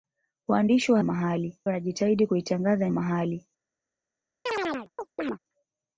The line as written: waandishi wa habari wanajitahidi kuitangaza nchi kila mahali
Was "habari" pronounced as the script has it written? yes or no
no